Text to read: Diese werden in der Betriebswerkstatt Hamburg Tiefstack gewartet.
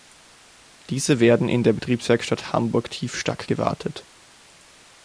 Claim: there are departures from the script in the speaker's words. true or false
false